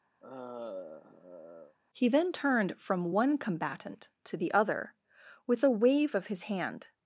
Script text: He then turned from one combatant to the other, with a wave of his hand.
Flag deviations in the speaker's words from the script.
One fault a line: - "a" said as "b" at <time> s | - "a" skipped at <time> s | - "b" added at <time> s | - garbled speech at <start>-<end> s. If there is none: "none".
none